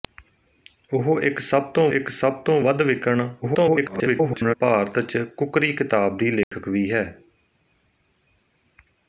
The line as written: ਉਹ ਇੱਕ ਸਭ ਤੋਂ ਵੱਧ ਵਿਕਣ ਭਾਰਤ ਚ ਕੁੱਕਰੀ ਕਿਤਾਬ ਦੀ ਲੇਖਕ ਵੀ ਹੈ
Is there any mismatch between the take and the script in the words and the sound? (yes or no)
yes